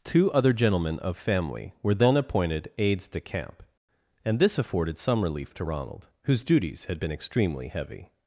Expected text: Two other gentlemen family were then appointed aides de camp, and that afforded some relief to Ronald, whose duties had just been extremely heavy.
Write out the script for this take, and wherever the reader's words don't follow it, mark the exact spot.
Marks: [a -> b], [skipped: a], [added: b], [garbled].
Two other gentlemen [added: of] family were then appointed aides de camp, and [that -> this] afforded some relief to Ronald, whose duties had [skipped: just] been extremely heavy.